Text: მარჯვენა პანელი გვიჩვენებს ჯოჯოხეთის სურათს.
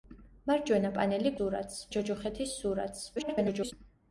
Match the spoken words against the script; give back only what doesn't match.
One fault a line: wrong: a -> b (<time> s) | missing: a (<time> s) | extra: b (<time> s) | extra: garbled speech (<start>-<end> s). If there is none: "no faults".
wrong: გვიჩვენებს -> სურათს (1.3 s)
extra: garbled speech (3.2-3.7 s)